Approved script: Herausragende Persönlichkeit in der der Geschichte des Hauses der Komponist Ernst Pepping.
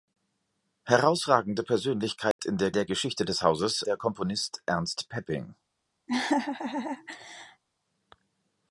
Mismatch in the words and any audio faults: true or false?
true